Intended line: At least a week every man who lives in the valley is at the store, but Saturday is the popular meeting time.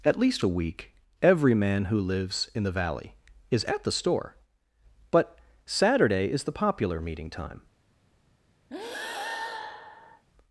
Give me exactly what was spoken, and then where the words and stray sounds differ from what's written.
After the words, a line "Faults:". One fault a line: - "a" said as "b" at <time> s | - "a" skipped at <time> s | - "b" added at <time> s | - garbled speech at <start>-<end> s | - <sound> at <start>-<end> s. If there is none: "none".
At least a week every man who lives in the valley is at the store, but Saturday is the popular meeting time.
Faults:
- breath at 8.7-10.2 s